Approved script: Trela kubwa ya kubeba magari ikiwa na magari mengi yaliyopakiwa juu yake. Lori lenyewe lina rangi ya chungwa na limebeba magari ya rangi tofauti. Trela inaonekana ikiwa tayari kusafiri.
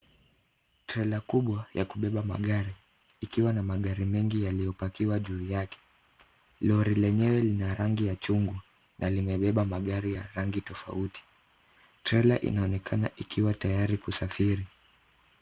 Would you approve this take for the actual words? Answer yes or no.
yes